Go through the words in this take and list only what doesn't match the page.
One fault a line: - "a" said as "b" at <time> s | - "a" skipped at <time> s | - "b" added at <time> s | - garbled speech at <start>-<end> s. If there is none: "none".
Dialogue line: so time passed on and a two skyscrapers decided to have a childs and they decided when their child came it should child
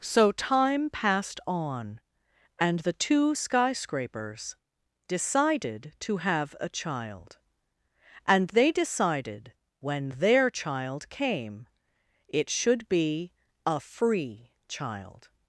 - "a" said as "the" at 2.8 s
- "childs" said as "child" at 6.7 s
- "be a free" added at 12.9 s